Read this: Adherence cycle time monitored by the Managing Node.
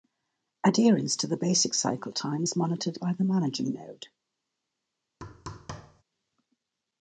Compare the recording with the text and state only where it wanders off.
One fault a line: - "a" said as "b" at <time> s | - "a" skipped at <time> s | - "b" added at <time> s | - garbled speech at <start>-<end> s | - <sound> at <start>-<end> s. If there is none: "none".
- "to the basic" added at 1.1 s
- "is" added at 2.4 s
- thud at 5.2-6.0 s